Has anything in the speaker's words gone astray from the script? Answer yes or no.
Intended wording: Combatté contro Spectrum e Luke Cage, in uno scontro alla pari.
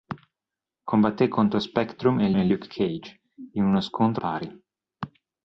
yes